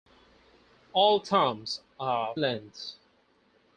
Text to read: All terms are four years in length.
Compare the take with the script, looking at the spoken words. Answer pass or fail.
fail